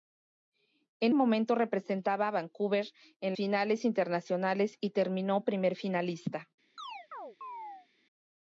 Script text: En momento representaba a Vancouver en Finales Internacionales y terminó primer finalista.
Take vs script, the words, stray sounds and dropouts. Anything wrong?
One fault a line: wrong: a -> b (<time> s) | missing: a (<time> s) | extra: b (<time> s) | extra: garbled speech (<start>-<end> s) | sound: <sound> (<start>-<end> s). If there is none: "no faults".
sound: chirp (6.8-7.9 s)